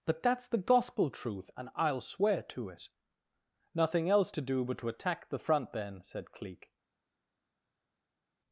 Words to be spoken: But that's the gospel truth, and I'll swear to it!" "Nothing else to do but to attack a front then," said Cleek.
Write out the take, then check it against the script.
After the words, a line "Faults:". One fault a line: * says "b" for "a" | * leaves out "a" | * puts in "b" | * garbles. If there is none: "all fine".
But that's the gospel truth, and I'll swear to it!" "Nothing else to do but to attack the front then," said Cleek.
Faults:
* says "the" for "a"